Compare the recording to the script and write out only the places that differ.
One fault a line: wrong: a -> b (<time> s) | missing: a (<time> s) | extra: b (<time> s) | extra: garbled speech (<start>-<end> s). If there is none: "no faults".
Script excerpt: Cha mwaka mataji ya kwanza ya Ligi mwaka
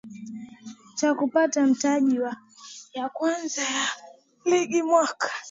wrong: mwaka -> kupata (1.1 s)